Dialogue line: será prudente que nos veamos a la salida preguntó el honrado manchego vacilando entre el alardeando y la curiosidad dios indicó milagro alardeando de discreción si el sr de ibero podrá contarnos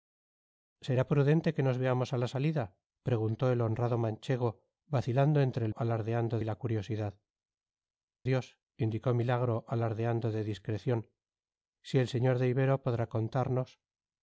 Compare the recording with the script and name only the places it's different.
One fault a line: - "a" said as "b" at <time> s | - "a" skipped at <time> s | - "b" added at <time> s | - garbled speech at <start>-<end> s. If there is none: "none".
none